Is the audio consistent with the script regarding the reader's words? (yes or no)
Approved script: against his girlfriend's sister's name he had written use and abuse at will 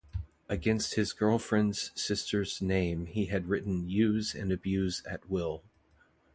yes